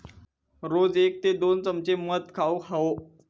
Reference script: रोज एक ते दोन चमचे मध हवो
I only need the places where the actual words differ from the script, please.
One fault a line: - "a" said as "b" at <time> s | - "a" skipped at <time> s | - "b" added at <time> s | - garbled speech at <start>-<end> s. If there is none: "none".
- "खाउक" added at 2.4 s